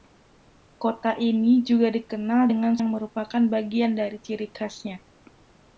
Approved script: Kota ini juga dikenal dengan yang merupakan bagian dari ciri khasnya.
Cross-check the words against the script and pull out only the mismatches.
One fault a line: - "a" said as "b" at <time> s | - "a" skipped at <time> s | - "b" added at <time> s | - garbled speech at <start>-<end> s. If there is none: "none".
none